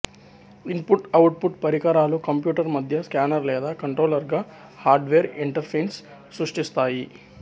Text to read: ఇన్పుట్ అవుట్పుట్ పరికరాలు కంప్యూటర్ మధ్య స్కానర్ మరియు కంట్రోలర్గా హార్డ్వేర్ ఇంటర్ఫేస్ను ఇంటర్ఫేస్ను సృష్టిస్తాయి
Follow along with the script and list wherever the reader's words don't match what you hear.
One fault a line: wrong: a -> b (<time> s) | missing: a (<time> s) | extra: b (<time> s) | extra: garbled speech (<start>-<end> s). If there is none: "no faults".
wrong: మరియు -> లేదా (3.5 s)
missing: ఇంటర్ఫేస్ను (6.0 s)